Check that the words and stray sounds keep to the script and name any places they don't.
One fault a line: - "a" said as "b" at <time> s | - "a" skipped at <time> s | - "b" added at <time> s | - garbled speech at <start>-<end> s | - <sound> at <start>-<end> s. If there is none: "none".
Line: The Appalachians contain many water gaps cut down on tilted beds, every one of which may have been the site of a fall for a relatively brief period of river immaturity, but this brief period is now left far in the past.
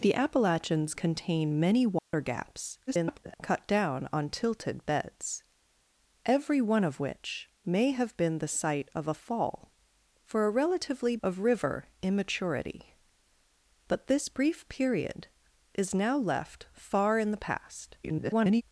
- dropout at 2.0-2.1 s
- garbled speech at 2.9-3.3 s
- "brief period" skipped at 11.2 s
- garbled speech at 18.0-18.6 s